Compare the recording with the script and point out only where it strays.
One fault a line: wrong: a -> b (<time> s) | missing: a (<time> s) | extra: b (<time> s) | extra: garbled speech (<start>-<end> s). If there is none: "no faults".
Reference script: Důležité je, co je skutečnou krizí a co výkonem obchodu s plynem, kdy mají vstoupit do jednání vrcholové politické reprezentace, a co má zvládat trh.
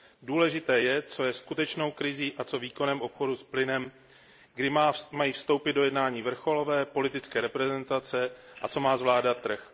no faults